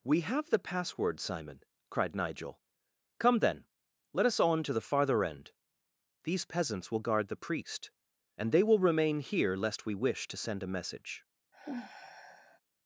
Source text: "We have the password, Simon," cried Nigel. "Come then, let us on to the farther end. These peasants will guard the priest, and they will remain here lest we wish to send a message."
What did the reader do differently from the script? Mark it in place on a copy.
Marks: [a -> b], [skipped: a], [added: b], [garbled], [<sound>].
"We have the password, Simon," cried Nigel. "Come then, let us on to the farther end. These peasants will guard the priest, and they will remain here lest we wish to send a message." [sigh]